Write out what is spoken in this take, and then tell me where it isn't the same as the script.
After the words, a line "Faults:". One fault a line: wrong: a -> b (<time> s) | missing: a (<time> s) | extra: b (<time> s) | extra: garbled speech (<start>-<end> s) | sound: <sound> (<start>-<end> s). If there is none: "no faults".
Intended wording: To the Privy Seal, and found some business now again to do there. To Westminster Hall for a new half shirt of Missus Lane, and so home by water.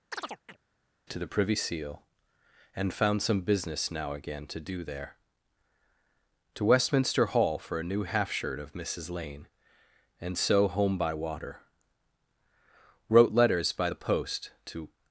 To the Privy Seal, and found some business now again to do there. To Westminster Hall for a new half shirt of Missus Lane, and so home by water. Wrote letters by the post to
Faults:
sound: chirp (0.1-0.6 s)
extra: Wrote letters by the post to (13.1 s)